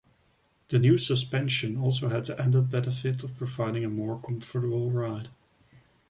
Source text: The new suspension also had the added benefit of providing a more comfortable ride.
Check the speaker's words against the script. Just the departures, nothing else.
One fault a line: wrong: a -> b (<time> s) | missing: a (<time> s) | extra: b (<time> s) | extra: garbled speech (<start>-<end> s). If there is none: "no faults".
no faults